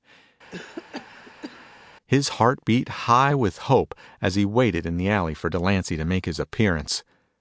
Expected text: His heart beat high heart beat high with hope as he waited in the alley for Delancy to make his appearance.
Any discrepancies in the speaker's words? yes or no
yes